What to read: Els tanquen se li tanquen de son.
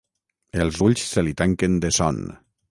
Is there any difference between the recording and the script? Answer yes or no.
yes